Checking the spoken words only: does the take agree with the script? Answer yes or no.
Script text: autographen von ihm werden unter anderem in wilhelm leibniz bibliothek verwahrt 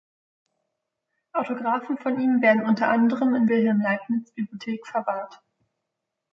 yes